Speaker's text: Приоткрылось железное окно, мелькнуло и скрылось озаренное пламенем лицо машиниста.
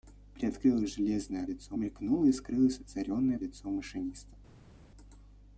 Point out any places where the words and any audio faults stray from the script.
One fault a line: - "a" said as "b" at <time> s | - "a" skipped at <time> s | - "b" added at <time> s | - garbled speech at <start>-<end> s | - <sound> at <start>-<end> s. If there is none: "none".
- "окно" said as "лицо" at 1.5 s
- "пламенем" skipped at 3.4 s